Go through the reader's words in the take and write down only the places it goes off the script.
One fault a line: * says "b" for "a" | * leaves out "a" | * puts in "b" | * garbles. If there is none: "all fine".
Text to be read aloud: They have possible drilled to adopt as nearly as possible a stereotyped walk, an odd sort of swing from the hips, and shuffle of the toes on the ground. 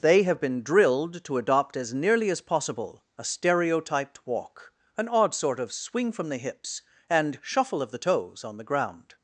* says "been" for "possible"